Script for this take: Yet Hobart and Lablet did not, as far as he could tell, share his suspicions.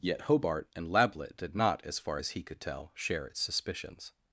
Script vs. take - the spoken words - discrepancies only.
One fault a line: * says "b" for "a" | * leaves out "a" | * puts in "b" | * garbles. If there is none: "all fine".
* says "its" for "his"